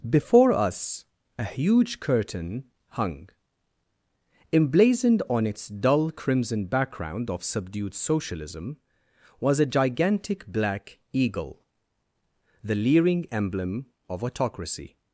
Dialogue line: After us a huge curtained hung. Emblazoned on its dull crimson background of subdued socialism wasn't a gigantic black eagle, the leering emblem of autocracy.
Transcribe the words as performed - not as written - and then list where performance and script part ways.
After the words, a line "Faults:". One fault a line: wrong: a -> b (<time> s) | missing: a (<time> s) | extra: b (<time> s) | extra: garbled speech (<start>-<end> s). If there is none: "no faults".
Before us a huge curtain hung. Emblazoned on its dull crimson background of subdued socialism was a gigantic black eagle, the leering emblem of autocracy.
Faults:
wrong: After -> Before (0.1 s)
wrong: curtained -> curtain (2.0 s)
wrong: wasn't -> was (9.4 s)